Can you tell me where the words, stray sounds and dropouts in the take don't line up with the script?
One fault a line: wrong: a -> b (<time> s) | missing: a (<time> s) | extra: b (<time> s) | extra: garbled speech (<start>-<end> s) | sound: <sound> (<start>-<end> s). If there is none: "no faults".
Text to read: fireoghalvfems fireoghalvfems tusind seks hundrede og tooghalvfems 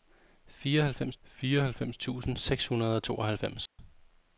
sound: dropout (3.7-3.8 s)